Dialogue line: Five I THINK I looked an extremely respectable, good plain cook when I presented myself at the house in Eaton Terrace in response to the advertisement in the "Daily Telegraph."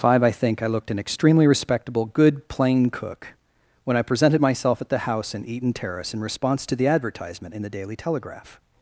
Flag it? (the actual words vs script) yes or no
no